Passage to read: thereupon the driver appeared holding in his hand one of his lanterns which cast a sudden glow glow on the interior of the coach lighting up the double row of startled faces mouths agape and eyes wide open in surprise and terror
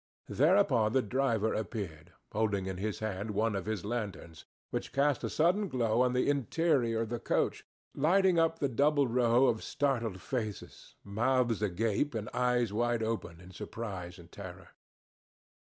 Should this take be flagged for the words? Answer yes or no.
yes